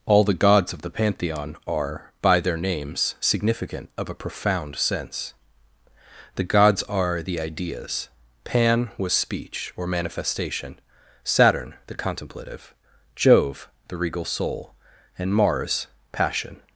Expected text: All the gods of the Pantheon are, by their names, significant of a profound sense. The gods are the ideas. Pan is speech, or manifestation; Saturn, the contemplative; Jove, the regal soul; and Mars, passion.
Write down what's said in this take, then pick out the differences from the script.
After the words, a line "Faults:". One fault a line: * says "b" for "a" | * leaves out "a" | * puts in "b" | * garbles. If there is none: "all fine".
All the gods of the Pantheon are, by their names, significant of a profound sense. The gods are the ideas. Pan was speech, or manifestation; Saturn, the contemplative; Jove, the regal soul; and Mars, passion.
Faults:
* says "was" for "is"